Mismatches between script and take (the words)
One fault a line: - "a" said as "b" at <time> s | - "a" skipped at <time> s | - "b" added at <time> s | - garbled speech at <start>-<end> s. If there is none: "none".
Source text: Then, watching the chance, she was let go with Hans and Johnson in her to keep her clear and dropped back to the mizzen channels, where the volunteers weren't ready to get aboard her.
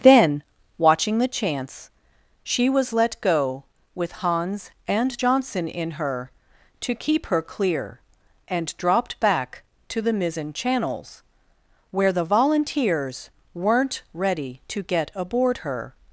none